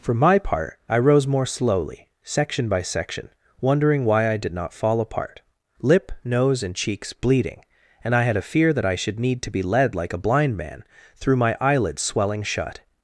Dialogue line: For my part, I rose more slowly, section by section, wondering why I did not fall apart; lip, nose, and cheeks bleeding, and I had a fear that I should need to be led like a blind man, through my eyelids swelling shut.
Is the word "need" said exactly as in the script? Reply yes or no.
yes